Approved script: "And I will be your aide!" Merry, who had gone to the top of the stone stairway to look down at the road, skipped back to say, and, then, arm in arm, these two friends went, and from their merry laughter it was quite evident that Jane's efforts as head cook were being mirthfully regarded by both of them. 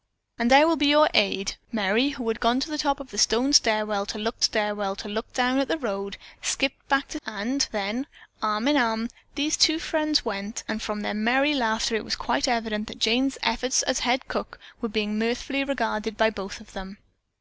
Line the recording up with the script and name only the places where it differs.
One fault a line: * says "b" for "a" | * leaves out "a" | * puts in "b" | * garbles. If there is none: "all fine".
* puts in "stairway to look"
* leaves out "say"